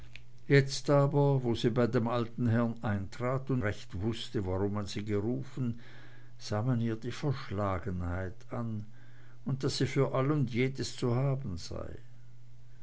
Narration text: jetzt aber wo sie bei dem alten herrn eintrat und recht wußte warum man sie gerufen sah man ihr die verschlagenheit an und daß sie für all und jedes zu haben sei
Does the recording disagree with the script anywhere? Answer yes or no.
no